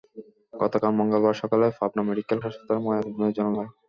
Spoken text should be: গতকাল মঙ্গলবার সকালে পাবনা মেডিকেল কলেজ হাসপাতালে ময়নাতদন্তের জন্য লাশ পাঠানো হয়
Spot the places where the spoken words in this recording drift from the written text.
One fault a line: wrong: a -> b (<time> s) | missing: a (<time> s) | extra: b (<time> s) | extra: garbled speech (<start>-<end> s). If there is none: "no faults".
missing: কলেজ (2.4 s)
missing: লাশ পাঠানো (3.5 s)